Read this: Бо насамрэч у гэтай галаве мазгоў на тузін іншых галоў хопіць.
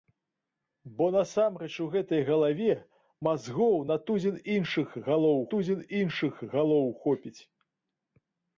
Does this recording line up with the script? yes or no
no